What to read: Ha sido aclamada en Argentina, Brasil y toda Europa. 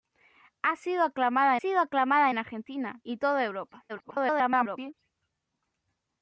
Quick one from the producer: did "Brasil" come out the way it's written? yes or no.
no